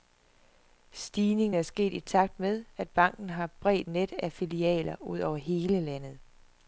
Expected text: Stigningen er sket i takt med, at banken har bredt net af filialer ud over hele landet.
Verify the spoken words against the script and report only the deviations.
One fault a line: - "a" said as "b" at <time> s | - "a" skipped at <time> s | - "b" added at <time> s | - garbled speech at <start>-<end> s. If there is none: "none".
none